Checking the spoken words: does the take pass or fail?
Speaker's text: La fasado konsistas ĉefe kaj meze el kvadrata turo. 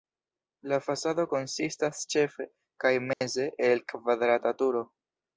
pass